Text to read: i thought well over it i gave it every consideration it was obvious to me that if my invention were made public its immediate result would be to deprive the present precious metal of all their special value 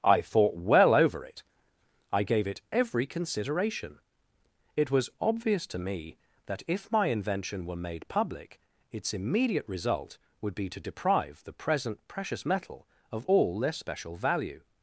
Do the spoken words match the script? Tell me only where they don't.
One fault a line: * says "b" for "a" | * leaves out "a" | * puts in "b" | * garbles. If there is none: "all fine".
all fine